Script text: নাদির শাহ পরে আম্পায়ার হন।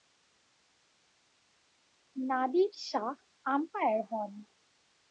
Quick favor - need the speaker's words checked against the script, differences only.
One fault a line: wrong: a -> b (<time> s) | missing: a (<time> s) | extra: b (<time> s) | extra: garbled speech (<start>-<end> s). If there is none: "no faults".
missing: পরে (3.1 s)